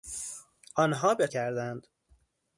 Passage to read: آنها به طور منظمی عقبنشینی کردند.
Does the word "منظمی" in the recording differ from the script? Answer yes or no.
yes